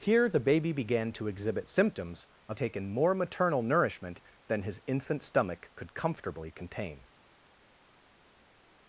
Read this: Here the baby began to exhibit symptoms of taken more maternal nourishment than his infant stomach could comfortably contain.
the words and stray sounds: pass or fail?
pass